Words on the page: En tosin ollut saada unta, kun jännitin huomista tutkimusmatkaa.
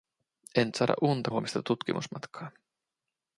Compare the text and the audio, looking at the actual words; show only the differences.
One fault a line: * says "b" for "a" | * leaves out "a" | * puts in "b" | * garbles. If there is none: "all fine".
* leaves out "tosin ollut"
* leaves out "kun jännitin"